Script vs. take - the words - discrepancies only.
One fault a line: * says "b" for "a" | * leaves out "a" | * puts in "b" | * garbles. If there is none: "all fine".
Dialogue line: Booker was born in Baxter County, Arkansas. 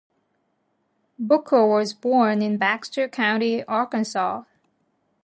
all fine